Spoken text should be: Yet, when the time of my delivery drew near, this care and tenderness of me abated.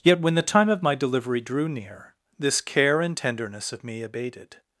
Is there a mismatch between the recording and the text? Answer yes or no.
no